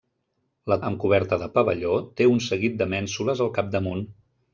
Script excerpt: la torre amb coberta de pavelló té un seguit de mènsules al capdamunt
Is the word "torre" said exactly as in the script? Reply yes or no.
no